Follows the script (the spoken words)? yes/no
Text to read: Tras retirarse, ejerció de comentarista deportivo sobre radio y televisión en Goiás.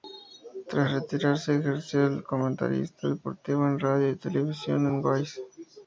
no